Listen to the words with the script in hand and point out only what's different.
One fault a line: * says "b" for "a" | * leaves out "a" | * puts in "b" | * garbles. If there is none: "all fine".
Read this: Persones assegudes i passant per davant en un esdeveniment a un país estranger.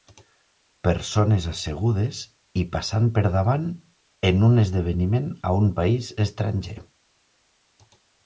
all fine